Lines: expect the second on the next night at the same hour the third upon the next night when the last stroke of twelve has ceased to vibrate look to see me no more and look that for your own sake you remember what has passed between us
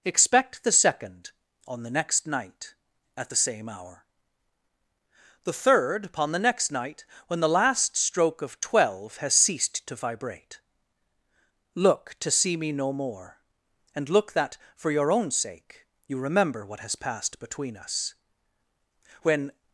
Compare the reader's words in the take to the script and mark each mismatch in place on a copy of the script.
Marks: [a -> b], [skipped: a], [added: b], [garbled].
expect the second on the next night at the same hour the third upon the next night when the last stroke of twelve has ceased to vibrate look to see me no more and look that for your own sake you remember what has passed between us [added: when]